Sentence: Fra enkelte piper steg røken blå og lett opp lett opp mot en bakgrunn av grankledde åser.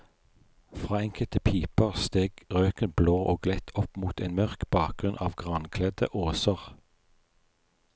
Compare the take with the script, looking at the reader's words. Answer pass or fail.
fail